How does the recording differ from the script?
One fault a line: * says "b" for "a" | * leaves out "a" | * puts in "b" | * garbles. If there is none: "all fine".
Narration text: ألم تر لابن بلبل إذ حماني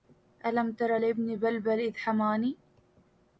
all fine